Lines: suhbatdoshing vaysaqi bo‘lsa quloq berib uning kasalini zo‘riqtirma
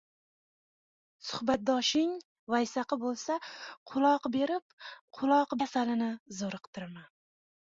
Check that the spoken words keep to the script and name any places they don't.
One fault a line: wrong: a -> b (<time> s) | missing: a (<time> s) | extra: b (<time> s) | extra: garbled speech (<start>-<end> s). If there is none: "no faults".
wrong: uning -> quloq (5.2 s)